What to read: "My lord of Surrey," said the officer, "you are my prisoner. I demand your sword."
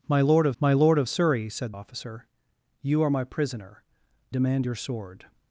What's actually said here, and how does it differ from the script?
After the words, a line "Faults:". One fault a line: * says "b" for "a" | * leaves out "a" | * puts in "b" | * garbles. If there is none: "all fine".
"My lord of my lord of Surrey," said officer, "you are my prisoner. demand your sword."
Faults:
* puts in "my lord of"
* leaves out "the"
* leaves out "I"